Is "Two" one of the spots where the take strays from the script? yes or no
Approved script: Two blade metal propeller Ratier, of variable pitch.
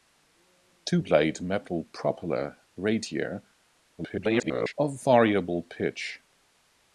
no